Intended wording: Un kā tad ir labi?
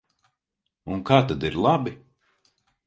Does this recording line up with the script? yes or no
yes